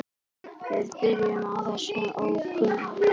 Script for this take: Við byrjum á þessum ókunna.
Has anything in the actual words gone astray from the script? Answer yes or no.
no